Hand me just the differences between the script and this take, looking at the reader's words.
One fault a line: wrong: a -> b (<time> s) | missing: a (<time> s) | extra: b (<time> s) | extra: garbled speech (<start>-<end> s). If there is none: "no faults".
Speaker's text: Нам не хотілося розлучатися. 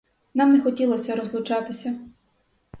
no faults